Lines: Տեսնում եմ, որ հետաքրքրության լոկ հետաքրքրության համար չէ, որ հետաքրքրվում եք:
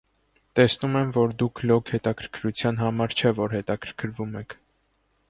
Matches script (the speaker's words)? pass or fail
fail